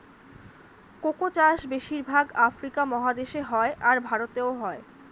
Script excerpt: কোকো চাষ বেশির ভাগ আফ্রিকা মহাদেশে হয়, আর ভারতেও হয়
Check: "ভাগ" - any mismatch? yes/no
no